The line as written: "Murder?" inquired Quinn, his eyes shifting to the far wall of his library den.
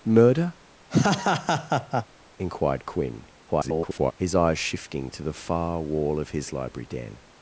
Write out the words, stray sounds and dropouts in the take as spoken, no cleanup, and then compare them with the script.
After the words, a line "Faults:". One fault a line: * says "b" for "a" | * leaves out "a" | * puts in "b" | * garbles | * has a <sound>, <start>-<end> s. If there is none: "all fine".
"Murder?" inquired Quinn, [garbled] his eyes shifting to the far wall of his library den.
Faults:
* has a laugh, 0.9-2.1 s
* garbles